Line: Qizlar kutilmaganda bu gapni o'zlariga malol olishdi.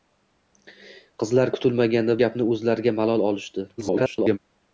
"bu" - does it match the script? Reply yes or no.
no